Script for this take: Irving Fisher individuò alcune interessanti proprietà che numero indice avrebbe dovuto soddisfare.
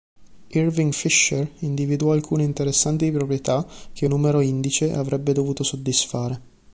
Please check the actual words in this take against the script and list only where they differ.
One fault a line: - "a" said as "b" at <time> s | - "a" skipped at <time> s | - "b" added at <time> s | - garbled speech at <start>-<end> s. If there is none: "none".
none